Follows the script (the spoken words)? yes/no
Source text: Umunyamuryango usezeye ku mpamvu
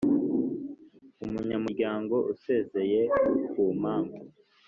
yes